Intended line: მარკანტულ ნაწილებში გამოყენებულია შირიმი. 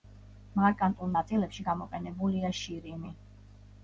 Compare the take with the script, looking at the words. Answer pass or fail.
pass